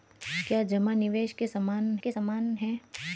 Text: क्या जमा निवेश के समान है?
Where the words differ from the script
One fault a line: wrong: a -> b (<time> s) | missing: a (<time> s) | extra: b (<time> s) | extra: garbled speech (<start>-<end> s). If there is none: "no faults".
extra: के समान (2.0 s)